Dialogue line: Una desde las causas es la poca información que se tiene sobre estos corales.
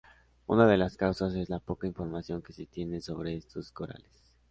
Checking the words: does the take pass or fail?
fail